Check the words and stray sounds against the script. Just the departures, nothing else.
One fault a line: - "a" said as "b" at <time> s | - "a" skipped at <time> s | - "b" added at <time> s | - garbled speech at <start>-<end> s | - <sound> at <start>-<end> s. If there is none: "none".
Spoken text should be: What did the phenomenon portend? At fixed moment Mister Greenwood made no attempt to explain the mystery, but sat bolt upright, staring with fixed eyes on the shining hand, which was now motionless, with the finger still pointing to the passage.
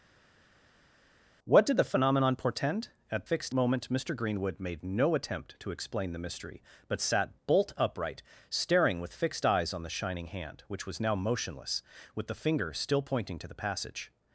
none